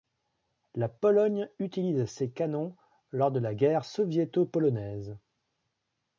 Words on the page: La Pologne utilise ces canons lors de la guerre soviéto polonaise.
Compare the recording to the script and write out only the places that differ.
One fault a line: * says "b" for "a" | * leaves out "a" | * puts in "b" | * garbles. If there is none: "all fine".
all fine